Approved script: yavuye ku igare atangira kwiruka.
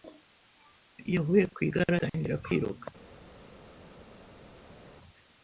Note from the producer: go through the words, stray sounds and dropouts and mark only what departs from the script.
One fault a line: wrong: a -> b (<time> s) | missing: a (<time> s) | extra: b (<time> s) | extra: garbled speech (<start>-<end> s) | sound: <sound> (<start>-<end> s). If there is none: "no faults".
no faults